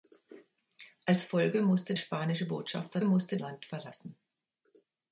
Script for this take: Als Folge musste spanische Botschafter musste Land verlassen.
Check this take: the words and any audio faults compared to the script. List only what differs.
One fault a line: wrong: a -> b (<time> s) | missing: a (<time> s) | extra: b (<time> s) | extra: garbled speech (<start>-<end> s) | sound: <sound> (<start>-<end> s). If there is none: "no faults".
no faults